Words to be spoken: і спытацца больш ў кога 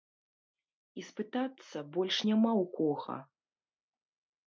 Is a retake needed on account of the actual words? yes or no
yes